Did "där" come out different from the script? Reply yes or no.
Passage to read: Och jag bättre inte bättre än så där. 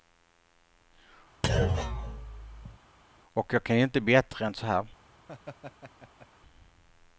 yes